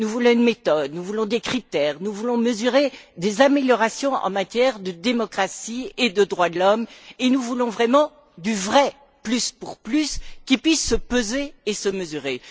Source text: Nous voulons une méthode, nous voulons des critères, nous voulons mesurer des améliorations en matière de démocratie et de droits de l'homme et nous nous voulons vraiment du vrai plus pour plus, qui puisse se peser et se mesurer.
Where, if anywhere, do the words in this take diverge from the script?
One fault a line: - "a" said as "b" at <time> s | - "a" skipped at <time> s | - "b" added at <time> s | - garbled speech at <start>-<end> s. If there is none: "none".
- "nous" skipped at 7.4 s